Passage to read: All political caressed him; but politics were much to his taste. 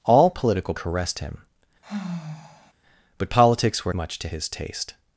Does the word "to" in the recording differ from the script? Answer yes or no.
no